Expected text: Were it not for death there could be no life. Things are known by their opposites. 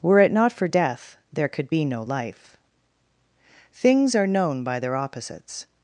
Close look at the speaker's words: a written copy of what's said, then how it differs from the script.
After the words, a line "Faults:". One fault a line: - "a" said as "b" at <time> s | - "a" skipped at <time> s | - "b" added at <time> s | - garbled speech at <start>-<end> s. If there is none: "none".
Were it not for death there could be no life. Things are known by their opposites.
Faults:
none